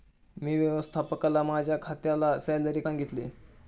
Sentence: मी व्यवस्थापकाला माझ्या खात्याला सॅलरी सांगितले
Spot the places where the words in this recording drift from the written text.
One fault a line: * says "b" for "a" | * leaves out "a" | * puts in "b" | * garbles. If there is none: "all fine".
all fine